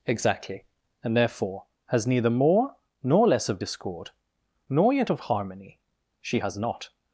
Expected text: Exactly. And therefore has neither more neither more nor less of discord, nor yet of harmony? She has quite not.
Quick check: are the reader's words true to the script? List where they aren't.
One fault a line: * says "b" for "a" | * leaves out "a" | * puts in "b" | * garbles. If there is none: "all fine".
* leaves out "neither more"
* leaves out "quite"